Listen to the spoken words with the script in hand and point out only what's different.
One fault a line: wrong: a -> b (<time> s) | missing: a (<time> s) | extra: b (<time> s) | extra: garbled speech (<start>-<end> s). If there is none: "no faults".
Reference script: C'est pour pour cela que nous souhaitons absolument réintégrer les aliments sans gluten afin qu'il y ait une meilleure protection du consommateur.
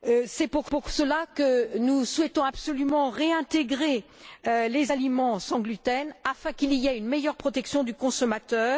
no faults